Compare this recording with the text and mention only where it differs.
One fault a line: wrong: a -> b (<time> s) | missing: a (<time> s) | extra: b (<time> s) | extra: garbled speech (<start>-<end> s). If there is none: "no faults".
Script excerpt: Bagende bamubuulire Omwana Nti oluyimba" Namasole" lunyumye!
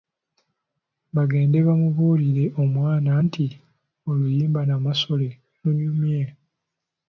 no faults